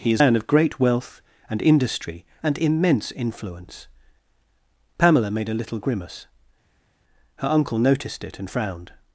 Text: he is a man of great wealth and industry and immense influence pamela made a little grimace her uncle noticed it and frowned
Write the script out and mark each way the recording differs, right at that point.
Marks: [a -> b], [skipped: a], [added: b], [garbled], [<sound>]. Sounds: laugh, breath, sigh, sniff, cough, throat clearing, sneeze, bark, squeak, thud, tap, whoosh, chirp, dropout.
he is [skipped: a] man of great wealth and industry and immense influence pamela made a little grimace her uncle noticed it and frowned